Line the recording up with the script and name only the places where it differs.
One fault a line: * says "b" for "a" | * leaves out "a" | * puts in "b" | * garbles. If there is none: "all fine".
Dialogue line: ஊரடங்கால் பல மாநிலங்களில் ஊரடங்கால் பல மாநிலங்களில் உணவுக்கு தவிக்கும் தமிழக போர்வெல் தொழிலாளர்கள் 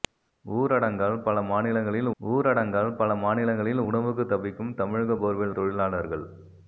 all fine